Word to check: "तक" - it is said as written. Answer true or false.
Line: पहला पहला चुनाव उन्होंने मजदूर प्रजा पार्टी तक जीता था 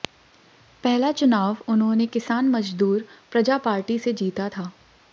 false